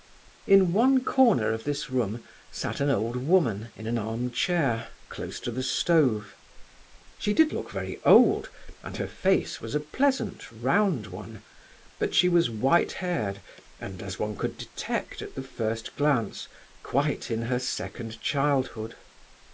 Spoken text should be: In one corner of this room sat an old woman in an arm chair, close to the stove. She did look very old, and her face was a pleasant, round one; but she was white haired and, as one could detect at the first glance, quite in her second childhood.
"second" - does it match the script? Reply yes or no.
yes